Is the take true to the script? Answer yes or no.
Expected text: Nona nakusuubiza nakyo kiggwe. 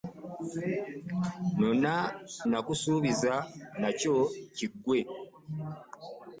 yes